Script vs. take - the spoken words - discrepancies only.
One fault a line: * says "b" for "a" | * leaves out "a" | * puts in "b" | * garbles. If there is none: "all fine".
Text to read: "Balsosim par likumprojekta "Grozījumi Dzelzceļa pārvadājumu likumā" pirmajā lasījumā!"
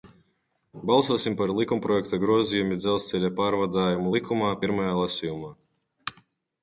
all fine